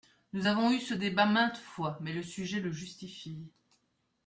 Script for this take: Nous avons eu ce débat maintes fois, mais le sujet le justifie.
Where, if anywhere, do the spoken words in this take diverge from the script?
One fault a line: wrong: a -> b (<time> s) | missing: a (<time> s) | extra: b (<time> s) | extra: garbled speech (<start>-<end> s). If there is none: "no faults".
no faults